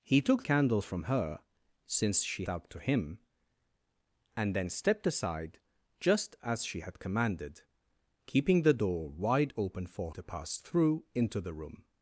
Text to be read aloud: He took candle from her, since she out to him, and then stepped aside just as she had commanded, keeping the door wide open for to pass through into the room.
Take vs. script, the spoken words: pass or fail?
pass